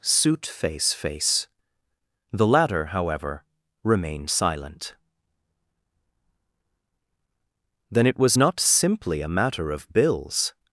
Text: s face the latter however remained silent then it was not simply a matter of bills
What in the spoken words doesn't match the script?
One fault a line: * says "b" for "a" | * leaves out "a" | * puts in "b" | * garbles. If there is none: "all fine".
* says "suit face" for "s"